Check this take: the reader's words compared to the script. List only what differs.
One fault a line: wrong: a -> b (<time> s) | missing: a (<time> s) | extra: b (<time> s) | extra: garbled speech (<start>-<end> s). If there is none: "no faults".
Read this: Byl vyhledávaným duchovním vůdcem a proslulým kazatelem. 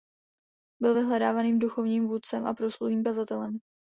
no faults